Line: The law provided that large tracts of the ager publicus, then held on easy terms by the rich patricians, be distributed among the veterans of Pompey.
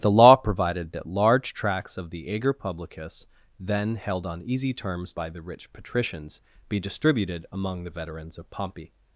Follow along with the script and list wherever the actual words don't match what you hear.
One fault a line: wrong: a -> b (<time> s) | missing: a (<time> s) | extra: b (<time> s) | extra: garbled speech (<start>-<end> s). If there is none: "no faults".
no faults